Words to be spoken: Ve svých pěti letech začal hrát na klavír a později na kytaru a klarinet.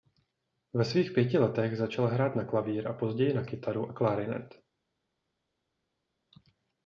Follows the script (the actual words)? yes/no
yes